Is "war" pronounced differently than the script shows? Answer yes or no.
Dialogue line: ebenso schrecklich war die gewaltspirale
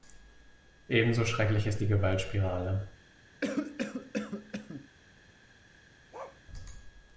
yes